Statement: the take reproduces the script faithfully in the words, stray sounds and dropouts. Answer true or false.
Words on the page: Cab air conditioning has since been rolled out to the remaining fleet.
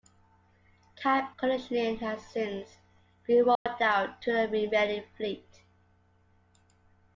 false